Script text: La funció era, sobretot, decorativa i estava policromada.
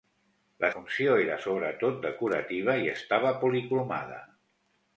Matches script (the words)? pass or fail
pass